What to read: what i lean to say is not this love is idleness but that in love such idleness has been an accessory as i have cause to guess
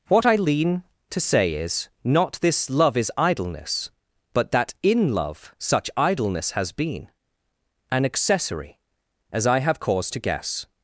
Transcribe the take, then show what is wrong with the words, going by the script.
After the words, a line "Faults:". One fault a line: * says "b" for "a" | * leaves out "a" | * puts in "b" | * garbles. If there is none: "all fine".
what i lean to say is not this love is idleness but that in love such idleness has been an accessory as i have cause to guess
Faults:
all fine